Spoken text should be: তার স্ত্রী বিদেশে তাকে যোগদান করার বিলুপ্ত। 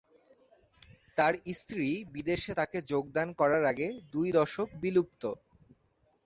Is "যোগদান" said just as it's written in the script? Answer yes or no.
yes